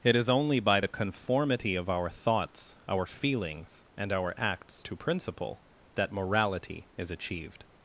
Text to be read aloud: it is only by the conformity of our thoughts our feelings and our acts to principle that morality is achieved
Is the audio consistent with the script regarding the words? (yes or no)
yes